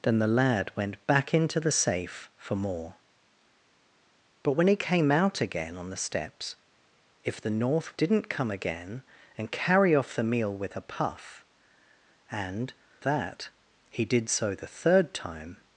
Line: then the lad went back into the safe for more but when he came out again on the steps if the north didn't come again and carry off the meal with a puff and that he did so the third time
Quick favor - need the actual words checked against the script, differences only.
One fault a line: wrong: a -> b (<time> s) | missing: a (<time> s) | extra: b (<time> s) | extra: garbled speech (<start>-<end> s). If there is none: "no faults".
no faults